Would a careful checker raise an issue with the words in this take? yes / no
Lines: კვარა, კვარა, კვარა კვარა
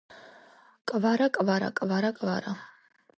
no